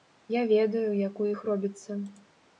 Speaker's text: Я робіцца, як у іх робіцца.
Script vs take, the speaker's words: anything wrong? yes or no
yes